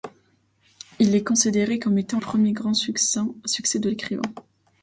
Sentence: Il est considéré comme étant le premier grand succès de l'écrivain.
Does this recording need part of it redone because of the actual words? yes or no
yes